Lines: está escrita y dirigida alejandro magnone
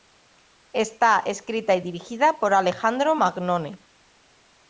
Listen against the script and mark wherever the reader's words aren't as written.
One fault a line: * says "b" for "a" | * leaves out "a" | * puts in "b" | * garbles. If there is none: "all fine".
* puts in "por"